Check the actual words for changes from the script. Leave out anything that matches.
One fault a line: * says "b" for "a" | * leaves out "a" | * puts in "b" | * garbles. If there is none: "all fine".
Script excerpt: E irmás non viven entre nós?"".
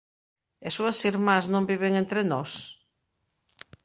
* puts in "súas"